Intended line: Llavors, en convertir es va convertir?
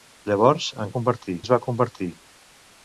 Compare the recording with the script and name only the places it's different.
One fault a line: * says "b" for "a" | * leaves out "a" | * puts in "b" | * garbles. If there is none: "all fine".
all fine